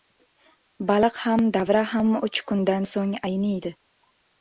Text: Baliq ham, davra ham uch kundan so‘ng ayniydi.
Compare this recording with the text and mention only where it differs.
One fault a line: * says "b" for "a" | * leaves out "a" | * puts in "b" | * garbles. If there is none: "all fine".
all fine